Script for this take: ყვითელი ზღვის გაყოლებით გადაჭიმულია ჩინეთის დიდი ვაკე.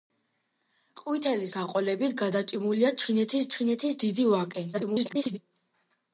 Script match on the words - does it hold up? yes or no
no